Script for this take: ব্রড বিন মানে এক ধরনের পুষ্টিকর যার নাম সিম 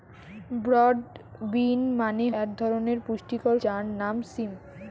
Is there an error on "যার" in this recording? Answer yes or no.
no